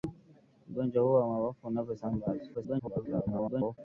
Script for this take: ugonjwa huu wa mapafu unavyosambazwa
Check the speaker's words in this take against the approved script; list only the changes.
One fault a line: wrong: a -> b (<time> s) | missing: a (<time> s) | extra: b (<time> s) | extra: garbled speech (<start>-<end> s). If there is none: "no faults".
extra: garbled speech (2.5-3.8 s)